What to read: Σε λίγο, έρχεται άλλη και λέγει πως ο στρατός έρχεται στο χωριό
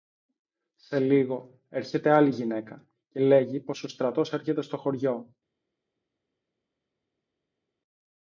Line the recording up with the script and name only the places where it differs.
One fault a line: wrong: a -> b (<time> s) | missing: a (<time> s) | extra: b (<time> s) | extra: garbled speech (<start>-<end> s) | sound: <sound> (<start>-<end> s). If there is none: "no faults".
extra: γυναίκα (2.3 s)